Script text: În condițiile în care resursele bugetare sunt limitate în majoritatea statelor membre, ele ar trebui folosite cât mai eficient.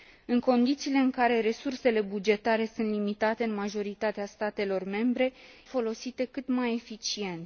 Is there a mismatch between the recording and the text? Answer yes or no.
yes